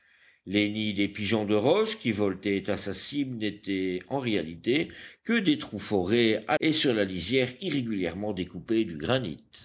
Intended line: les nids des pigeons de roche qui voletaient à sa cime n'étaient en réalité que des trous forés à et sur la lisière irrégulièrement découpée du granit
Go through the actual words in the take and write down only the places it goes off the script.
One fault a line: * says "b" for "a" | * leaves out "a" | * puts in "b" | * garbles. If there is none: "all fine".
all fine